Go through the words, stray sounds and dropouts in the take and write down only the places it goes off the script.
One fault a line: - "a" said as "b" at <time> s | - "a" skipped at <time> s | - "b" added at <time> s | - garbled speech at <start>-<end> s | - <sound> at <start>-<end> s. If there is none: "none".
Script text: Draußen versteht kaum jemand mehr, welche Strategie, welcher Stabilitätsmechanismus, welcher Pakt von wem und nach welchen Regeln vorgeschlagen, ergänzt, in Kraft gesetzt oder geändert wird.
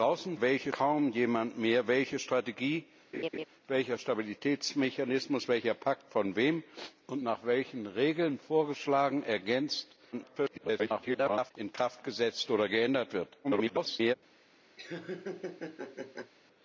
- "versteht" said as "welche" at 0.4 s
- laugh at 3.1-3.5 s
- garbled speech at 10.1-11.5 s
- garbled speech at 13.4-14.1 s
- laugh at 14.8-16.3 s